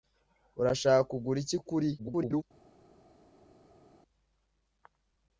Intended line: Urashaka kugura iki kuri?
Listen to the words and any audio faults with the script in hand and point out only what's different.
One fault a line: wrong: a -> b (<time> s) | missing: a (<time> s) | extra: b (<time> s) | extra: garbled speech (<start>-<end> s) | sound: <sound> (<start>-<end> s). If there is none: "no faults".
extra: garbled speech (2.0-2.4 s)